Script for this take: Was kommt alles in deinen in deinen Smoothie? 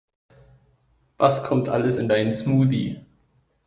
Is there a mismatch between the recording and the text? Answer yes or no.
yes